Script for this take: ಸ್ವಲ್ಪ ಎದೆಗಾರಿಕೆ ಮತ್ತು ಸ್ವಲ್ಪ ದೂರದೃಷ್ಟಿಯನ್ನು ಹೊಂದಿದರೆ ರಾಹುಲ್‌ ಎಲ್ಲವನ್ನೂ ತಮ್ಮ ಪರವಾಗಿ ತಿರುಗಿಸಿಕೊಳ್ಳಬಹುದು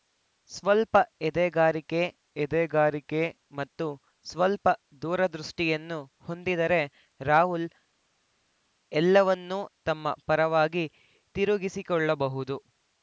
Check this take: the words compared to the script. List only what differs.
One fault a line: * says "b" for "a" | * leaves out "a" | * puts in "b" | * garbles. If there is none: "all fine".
* puts in "ಎದೆಗಾರಿಕೆ"